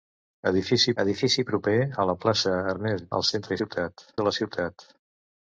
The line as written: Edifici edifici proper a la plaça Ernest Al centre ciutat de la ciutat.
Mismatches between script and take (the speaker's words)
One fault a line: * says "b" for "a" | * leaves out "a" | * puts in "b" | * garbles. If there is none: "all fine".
all fine